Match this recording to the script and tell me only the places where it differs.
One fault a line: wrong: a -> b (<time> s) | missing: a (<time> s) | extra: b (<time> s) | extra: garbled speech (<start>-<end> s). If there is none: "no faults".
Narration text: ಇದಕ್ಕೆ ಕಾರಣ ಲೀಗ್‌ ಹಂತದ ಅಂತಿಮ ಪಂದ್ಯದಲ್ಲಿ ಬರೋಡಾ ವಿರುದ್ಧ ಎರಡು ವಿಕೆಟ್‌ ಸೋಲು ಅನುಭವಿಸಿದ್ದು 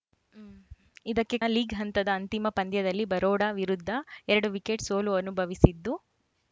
missing: ಕಾರಣ (1.4 s)